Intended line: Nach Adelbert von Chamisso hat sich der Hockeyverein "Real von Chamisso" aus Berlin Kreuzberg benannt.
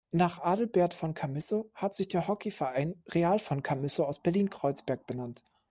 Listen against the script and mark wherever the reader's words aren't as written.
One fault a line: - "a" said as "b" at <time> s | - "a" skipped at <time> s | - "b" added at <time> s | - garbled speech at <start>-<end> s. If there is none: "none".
none